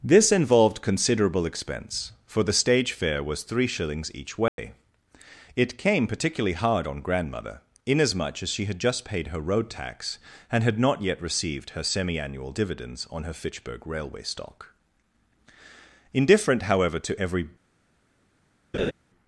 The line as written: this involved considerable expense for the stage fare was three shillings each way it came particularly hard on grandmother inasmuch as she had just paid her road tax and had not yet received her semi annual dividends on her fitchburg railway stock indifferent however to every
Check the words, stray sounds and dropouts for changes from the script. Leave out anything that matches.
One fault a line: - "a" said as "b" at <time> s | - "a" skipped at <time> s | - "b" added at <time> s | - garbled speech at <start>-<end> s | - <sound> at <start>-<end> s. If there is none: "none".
- dropout at 4.5-4.6 s
- laugh at 18.7-18.9 s